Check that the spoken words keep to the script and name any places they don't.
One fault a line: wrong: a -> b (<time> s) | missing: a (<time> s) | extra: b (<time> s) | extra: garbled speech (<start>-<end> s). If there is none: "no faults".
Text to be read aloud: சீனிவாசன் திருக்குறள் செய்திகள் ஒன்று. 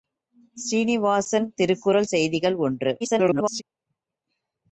extra: garbled speech (3.0-3.6 s)